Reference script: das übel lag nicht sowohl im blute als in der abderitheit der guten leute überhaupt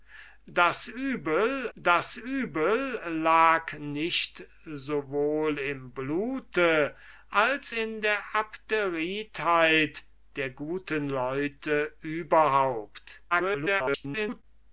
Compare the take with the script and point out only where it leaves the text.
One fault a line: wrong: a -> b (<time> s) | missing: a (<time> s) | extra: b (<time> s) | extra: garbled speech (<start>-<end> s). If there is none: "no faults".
extra: das übel (1.8 s)
extra: garbled speech (13.3-14.4 s)